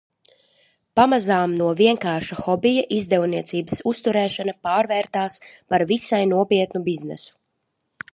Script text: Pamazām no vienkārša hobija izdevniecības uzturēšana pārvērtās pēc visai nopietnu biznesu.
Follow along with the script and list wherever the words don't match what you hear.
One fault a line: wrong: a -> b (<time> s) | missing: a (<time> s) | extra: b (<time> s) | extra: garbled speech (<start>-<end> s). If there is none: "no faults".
wrong: pēc -> par (5.7 s)